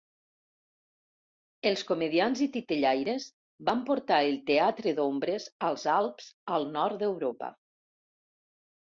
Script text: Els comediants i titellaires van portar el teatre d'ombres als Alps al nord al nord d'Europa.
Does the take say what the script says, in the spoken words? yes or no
no